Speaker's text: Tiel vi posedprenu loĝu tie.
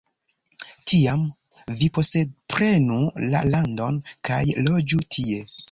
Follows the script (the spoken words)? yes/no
no